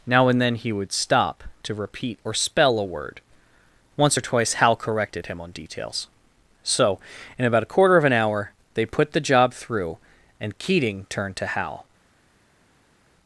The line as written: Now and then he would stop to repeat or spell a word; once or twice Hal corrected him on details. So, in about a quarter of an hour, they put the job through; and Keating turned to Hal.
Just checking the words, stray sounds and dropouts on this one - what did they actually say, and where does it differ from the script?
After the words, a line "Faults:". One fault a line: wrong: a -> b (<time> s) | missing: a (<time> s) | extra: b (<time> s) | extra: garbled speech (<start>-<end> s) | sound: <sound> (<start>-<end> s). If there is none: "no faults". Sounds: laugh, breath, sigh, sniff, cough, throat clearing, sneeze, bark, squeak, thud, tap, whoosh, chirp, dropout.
Now and then he would stop to repeat or spell a word; once or twice Hal corrected him on details. So, in about a quarter of an hour, they put the job through; and Keating turned to Hal.
Faults:
no faults